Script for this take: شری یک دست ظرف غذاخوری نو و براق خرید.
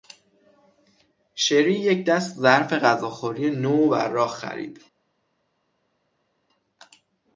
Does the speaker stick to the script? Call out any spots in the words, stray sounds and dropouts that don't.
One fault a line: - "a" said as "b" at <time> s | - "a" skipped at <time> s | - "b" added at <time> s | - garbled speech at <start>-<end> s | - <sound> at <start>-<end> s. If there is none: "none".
none